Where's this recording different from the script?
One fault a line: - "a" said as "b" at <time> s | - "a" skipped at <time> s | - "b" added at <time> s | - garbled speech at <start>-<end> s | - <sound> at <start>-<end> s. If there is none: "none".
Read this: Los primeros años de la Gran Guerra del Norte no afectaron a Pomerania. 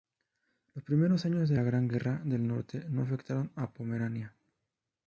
none